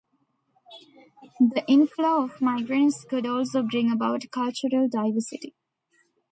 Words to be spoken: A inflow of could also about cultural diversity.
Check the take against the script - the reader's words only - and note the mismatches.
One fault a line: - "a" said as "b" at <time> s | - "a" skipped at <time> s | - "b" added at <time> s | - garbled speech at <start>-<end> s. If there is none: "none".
- "A" said as "The" at 1.4 s
- "migrants" added at 2.4 s
- "bring" added at 3.6 s